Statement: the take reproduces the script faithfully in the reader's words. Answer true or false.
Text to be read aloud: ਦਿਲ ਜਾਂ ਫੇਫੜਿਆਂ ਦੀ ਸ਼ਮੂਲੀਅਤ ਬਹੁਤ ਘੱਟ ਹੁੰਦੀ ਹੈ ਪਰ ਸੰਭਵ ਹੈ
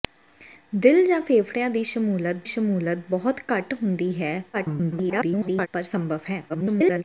false